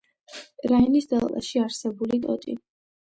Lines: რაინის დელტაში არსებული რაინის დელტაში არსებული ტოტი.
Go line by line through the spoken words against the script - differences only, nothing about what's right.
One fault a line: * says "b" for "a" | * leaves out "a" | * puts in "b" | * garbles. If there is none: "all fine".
* leaves out "რაინის დელტაში არსებული"